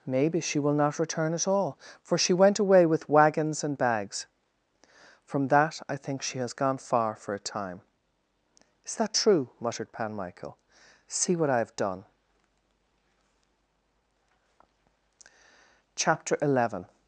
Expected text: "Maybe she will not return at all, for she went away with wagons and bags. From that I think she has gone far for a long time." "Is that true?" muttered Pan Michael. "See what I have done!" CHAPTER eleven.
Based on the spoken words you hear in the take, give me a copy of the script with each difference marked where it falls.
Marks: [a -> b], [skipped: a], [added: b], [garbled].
"Maybe she will not return at all, for she went away with wagons and bags. From that I think she has gone far for a [skipped: long] time." "Is that true?" muttered Pan Michael. "See what I have done!" CHAPTER eleven.